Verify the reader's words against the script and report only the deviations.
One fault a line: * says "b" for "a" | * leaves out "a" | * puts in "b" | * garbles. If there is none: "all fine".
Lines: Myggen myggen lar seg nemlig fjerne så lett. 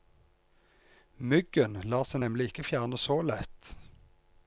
* leaves out "myggen"
* puts in "ikke"